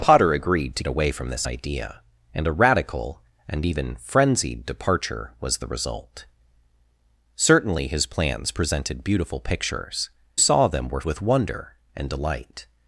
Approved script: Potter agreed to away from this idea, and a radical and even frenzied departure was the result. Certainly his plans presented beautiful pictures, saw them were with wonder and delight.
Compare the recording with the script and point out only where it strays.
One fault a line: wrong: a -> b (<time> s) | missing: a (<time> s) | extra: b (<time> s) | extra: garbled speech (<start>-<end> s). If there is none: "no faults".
no faults